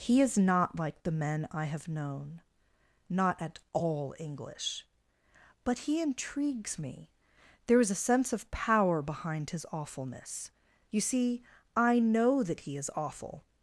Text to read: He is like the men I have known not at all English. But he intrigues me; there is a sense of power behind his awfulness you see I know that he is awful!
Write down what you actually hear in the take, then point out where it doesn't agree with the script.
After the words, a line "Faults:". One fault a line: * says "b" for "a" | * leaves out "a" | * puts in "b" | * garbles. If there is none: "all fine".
He is not like the men I have known not at all English. But he intrigues me; there is a sense of power behind his awfulness you see I know that he is awful!
Faults:
* puts in "not"